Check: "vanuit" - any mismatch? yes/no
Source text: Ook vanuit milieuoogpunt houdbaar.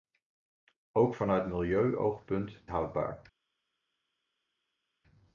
no